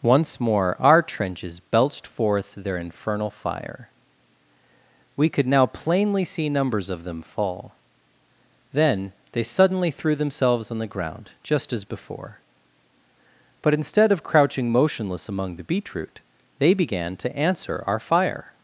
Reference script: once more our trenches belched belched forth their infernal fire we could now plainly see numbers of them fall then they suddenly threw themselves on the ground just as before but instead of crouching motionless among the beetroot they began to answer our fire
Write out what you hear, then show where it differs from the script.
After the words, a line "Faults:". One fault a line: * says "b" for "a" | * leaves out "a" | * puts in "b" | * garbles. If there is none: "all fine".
once more our trenches belched forth their infernal fire we could now plainly see numbers of them fall then they suddenly threw themselves on the ground just as before but instead of crouching motionless among the beetroot they began to answer our fire
Faults:
* leaves out "belched"